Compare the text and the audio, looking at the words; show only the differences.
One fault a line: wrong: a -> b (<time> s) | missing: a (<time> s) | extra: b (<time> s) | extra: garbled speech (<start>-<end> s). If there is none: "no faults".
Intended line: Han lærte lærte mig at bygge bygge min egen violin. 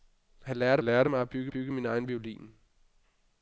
no faults